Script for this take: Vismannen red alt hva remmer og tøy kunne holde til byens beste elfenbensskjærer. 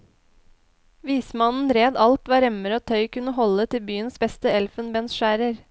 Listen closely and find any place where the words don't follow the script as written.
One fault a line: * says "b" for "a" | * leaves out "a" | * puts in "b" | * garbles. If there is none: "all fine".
all fine